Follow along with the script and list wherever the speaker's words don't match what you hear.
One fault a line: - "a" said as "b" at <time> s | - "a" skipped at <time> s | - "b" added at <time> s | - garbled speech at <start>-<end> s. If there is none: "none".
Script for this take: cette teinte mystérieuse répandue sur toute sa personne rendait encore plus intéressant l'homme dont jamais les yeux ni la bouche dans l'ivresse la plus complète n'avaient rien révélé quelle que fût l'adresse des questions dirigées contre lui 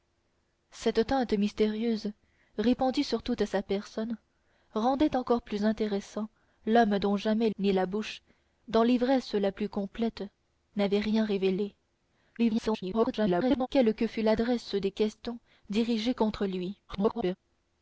- "les yeux" skipped at 7.5 s
- garbled speech at 12.4-13.7 s
- garbled speech at 16.9-17.4 s